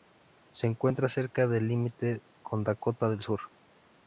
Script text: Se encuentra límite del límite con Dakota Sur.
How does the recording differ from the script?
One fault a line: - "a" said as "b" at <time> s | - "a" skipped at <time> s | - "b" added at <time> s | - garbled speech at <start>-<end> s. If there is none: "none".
- "límite" said as "cerca" at 1.1 s
- "del" added at 3.1 s